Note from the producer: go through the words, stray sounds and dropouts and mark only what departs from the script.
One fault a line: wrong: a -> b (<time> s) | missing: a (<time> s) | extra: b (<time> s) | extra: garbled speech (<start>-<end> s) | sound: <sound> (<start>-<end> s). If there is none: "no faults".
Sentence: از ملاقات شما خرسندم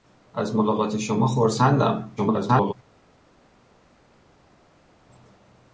extra: garbled speech (2.2-2.7 s)